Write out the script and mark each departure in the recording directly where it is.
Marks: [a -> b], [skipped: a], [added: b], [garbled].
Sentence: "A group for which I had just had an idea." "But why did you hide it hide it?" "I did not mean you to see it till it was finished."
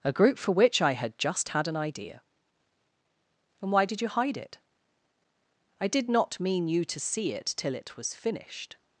"A group for which I had just had an idea." ["But -> And] why did you hide it [skipped: hide it?"] "I did not mean you to see it till it was finished."